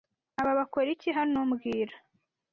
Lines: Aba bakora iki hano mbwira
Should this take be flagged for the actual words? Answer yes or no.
no